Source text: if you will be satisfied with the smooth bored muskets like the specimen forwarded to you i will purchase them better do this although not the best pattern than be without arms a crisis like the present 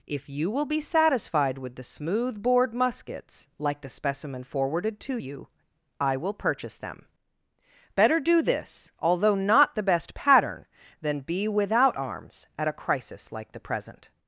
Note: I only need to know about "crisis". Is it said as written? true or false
true